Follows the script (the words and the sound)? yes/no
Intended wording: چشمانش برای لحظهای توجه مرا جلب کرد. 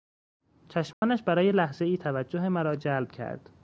no